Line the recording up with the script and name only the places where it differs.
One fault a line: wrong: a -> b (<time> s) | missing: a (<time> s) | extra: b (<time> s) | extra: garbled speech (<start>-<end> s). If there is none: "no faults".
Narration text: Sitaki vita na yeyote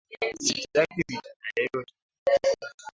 no faults